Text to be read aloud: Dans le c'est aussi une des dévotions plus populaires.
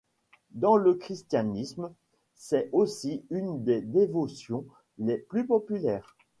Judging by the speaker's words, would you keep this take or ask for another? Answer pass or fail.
fail